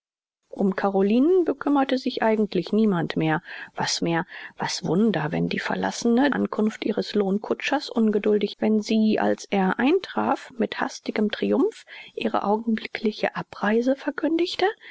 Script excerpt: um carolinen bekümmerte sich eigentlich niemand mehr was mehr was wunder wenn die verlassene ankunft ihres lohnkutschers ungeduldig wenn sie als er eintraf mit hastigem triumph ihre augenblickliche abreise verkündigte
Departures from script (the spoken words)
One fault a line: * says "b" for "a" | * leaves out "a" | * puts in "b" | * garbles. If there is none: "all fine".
all fine